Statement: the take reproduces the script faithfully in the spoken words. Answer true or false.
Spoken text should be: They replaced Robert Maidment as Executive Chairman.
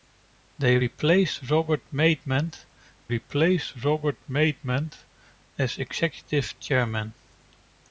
false